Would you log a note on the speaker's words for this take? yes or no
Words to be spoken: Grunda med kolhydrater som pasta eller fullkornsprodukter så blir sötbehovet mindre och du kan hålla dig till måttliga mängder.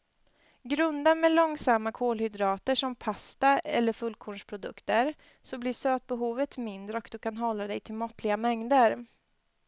yes